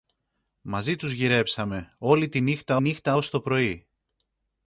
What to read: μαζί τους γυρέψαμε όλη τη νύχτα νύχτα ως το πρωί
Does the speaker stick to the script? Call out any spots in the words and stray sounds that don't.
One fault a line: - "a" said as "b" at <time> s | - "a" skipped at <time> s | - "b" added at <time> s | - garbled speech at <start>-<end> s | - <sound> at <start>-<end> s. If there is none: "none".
none